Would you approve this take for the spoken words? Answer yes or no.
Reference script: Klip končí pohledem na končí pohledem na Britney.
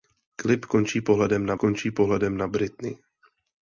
yes